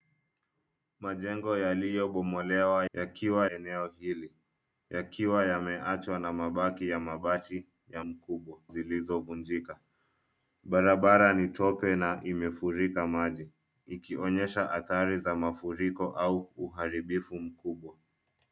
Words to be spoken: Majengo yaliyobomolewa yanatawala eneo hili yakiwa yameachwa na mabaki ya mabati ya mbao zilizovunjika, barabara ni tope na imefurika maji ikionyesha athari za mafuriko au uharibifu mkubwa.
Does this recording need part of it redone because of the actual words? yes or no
yes